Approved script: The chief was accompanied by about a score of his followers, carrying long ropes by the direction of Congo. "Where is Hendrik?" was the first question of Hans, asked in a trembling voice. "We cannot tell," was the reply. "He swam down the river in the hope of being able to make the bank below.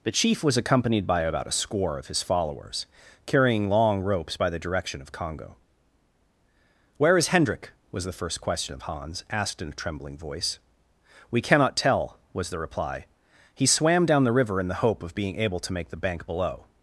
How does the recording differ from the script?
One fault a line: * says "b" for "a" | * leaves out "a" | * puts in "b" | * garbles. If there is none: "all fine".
all fine